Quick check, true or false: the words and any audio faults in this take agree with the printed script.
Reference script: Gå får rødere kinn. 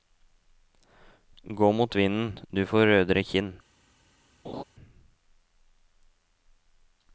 false